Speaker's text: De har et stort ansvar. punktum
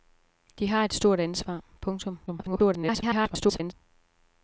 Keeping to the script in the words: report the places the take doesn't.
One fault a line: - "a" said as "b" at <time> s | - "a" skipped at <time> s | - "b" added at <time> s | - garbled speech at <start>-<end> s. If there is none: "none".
- garbled speech at 2.3-3.7 s